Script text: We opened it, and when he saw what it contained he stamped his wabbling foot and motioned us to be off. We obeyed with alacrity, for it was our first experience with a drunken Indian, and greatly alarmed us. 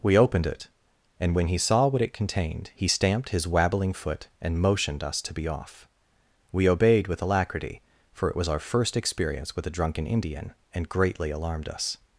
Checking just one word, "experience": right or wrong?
right